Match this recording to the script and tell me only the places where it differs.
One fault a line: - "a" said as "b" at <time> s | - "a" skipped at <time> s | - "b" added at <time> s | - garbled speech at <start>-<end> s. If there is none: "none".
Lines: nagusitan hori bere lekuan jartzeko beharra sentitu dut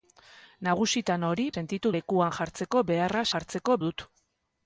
- "bere" said as "sentitu" at 1.5 s
- "sentitu" said as "jartzeko" at 3.3 s